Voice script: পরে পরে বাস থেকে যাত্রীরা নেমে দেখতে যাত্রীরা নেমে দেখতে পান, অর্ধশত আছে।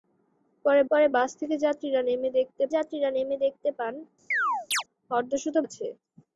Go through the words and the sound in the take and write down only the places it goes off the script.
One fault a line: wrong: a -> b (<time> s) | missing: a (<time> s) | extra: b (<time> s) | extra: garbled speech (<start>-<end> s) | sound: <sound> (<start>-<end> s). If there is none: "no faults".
sound: chirp (4.3-4.8 s)